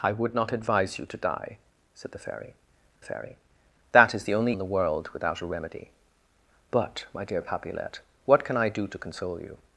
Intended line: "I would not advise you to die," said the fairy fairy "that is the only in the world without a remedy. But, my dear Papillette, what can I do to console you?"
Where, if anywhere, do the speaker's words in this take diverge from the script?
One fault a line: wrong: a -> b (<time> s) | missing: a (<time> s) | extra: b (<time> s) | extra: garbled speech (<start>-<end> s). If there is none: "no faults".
no faults